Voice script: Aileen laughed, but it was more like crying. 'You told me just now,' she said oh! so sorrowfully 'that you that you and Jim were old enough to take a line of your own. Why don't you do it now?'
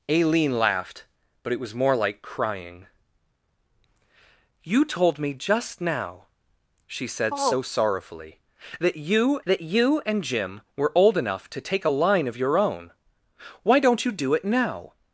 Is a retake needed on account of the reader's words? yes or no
no